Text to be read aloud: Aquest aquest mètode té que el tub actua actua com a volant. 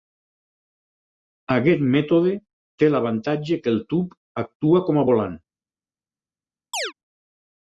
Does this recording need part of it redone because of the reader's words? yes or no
yes